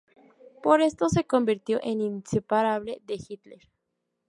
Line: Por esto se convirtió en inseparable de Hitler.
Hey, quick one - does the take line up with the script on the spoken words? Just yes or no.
yes